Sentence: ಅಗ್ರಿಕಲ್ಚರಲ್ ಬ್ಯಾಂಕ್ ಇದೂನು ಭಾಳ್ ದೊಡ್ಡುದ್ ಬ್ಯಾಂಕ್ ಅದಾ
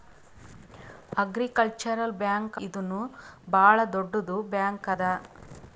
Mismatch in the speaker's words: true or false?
false